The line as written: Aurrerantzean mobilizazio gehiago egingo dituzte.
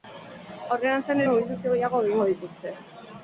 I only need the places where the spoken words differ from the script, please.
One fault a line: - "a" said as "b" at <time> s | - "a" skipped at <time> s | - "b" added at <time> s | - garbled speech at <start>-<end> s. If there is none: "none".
none